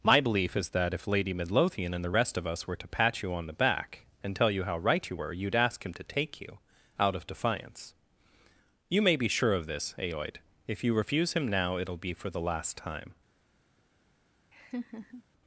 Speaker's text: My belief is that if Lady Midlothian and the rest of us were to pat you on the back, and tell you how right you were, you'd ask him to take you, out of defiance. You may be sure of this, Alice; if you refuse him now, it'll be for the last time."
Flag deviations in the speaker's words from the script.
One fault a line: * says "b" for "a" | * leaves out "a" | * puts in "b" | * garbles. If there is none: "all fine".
* says "Aoid" for "Alice"